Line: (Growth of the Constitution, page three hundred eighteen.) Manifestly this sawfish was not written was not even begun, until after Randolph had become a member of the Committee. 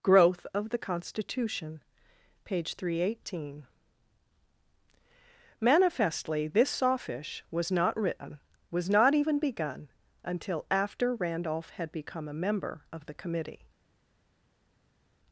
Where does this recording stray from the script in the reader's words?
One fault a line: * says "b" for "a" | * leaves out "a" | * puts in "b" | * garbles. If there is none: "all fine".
all fine